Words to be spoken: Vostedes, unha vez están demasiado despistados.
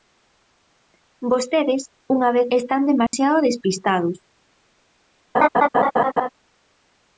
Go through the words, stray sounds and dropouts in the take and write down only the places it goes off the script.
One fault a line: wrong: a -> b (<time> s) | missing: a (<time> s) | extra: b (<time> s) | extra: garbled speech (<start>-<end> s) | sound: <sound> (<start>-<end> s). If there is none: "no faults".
sound: dropout (3.1-3.1 s)
sound: laugh (5.3-6.3 s)